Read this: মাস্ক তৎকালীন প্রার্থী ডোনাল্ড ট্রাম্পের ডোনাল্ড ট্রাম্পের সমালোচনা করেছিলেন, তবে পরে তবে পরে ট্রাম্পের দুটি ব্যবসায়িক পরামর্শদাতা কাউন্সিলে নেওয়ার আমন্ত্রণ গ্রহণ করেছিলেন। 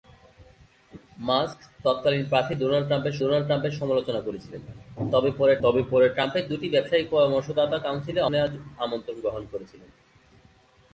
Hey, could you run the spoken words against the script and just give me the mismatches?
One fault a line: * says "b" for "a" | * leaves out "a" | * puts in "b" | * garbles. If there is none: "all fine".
all fine